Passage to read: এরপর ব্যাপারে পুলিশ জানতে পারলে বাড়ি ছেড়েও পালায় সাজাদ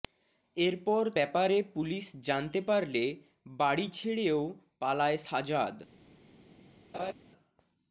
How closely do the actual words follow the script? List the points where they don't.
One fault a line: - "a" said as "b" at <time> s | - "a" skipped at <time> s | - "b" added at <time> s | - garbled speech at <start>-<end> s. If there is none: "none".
none